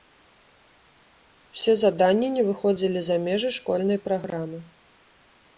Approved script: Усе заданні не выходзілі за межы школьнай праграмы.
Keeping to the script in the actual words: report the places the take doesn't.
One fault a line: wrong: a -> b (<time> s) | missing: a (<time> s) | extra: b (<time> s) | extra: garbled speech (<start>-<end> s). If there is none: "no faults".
no faults